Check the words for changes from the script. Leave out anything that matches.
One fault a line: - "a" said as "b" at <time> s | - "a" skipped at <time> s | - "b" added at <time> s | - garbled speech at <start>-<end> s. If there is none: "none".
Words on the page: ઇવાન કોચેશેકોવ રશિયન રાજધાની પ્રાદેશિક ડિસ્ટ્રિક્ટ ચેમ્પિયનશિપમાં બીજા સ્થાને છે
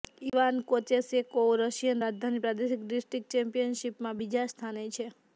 none